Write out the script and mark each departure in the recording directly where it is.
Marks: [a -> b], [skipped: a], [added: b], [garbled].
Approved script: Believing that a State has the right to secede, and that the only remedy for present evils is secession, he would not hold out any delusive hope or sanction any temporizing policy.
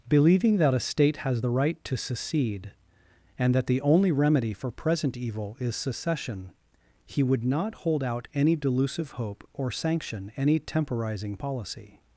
Believing that a State has the right to secede, and that the only remedy for present [evils -> evil] is secession, he would not hold out any delusive hope or sanction any temporizing policy.